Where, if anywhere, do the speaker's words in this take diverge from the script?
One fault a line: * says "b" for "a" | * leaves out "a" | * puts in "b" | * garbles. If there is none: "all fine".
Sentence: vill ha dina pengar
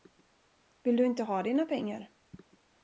* puts in "du inte"